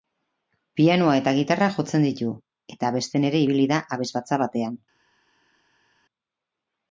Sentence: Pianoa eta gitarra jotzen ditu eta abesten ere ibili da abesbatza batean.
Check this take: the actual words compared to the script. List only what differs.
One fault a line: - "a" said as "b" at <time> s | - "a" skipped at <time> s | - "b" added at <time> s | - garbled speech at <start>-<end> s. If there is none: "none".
none